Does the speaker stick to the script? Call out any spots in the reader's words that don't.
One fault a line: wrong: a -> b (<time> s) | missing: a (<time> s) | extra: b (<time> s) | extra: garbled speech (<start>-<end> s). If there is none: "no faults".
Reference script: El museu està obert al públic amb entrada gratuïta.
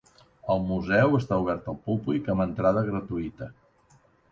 no faults